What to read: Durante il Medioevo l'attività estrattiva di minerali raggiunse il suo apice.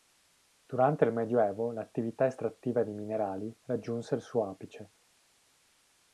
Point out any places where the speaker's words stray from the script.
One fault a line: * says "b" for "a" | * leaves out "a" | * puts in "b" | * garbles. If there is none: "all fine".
all fine